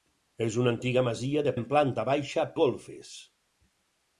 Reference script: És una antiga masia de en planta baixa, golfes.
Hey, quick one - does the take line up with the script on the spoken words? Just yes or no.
yes